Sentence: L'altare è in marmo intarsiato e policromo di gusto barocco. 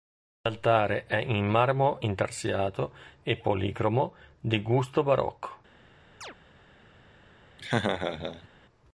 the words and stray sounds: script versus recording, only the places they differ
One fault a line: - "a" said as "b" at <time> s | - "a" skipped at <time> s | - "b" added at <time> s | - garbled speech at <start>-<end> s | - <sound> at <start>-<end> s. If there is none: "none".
- chirp at 6.2-6.4 s
- laugh at 7.6-8.5 s